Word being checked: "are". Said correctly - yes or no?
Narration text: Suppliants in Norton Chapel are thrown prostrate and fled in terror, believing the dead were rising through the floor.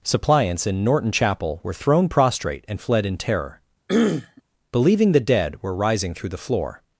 no